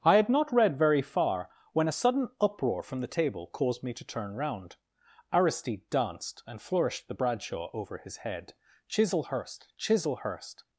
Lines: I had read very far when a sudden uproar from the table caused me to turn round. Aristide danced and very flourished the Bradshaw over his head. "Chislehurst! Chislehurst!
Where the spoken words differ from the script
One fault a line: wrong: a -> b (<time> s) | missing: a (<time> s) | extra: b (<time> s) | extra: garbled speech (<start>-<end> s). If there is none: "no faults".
extra: not (0.3 s)
missing: very (6.6 s)